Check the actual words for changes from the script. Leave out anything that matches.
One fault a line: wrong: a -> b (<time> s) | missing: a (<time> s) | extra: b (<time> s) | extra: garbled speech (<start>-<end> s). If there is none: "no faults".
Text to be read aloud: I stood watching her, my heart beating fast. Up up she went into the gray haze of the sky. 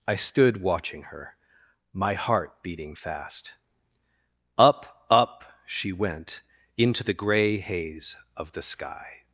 no faults